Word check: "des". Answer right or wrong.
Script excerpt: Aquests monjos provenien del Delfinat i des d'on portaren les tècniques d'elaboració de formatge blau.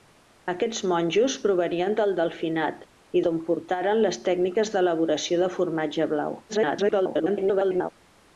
wrong